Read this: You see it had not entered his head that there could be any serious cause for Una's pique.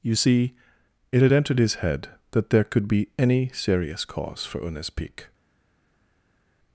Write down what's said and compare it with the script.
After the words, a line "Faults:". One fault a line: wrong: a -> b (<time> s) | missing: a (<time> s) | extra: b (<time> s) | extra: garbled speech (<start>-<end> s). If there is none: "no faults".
You see it had entered his head that there could be any serious cause for Una's pique.
Faults:
missing: not (1.3 s)